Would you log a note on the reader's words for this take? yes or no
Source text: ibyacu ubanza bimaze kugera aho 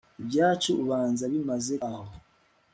yes